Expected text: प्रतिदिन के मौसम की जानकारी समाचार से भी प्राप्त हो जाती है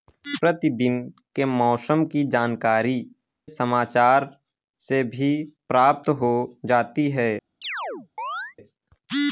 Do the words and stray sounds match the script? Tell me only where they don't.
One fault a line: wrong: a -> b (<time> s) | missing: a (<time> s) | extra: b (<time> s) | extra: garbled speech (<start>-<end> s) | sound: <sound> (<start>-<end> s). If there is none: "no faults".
sound: chirp (7.6-8.6 s)